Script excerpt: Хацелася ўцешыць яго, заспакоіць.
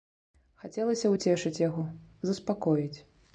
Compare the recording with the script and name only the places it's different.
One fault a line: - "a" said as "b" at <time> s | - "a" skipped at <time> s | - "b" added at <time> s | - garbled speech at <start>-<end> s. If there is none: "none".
none